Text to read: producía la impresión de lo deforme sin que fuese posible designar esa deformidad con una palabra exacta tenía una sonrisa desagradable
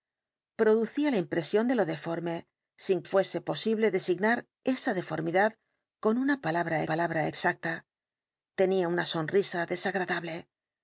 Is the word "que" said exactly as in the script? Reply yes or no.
no